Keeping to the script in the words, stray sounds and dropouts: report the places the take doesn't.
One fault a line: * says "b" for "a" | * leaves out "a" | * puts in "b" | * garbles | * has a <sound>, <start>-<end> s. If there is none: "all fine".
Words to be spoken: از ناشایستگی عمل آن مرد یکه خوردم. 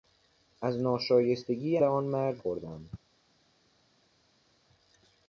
* leaves out "عمل"
* leaves out "یکه"